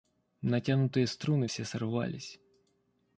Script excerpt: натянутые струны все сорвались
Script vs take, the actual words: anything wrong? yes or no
no